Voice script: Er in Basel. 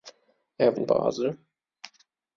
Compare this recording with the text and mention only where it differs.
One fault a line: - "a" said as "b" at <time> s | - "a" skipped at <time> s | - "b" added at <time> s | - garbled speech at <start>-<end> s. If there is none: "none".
none